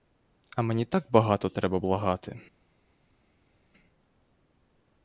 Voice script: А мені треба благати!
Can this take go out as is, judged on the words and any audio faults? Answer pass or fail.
fail